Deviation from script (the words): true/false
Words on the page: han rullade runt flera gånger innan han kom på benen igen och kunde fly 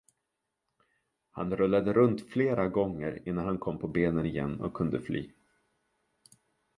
false